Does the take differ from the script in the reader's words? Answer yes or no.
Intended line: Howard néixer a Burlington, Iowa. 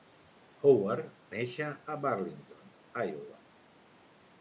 no